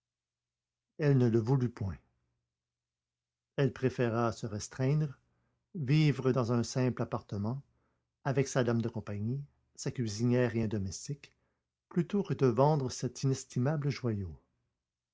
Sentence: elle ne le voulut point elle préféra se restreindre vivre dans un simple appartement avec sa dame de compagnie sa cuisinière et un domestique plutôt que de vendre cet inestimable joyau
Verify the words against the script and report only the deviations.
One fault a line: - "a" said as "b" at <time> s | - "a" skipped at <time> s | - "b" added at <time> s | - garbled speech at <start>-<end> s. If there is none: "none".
none